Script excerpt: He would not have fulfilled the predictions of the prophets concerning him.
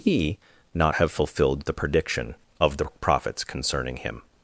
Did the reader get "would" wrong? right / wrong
wrong